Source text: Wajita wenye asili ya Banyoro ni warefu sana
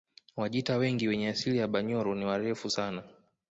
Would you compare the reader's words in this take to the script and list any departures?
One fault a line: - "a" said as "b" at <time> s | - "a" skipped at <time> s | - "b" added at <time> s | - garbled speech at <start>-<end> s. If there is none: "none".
- "wengi" added at 0.8 s